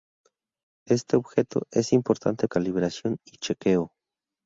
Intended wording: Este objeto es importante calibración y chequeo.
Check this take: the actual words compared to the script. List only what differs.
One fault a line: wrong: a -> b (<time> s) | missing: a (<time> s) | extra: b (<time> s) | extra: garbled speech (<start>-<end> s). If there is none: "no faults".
no faults